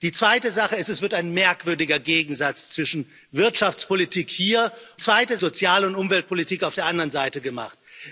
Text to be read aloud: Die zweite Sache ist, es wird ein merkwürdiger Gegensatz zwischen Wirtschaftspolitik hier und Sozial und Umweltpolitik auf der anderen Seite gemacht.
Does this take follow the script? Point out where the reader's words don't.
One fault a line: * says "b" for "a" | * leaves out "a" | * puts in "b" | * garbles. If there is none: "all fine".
* says "zweite" for "und"